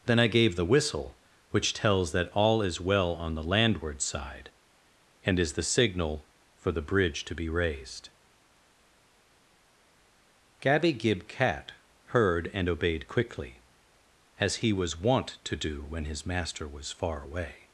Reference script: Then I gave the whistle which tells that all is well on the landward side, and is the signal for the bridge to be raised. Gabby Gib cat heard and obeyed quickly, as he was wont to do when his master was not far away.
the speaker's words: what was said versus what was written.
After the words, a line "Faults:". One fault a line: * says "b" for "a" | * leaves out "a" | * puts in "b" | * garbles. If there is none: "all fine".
Then I gave the whistle which tells that all is well on the landward side, and is the signal for the bridge to be raised. Gabby Gib cat heard and obeyed quickly, as he was wont to do when his master was far away.
Faults:
* leaves out "not"